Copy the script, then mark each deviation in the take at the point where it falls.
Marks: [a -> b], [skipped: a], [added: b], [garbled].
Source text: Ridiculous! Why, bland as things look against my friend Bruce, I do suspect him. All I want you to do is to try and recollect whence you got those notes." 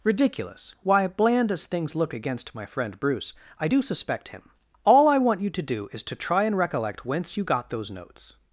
Ridiculous! Why, bland as things look against my friend Bruce, I do suspect him. All I want you to do is to try and recollect whence you got those notes."